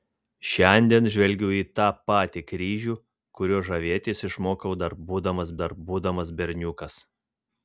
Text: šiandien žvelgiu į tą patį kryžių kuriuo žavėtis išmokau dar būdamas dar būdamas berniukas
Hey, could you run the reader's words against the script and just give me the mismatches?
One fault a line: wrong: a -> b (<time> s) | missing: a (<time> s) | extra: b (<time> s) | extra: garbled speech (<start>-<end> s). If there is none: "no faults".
no faults